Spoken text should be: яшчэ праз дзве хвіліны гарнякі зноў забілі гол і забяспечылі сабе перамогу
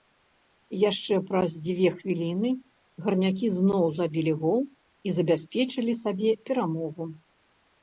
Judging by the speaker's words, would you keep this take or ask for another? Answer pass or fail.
pass